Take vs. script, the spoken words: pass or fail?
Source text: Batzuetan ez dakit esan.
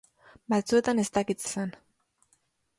pass